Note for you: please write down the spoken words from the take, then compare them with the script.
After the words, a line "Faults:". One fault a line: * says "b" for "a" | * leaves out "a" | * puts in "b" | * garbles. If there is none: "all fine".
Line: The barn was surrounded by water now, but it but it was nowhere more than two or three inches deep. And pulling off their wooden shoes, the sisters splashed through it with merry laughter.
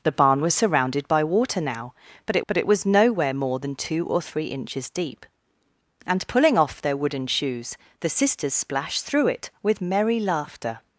The barn was surrounded by water now, but it but it was nowhere more than two or three inches deep. And pulling off their wooden shoes, the sisters splashed through it with merry laughter.
Faults:
all fine